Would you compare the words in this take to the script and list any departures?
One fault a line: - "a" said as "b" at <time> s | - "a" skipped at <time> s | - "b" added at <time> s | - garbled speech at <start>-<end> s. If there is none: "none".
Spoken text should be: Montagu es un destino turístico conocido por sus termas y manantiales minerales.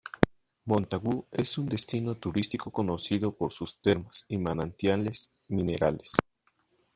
none